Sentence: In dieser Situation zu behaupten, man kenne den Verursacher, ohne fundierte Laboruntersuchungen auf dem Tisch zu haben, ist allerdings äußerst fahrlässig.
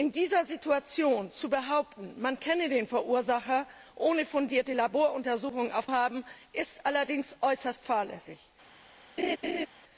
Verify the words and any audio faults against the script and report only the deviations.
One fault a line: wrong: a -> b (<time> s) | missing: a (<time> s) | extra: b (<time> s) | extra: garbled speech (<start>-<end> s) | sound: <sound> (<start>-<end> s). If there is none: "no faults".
missing: dem Tisch zu (5.9 s)
sound: laugh (9.2-9.7 s)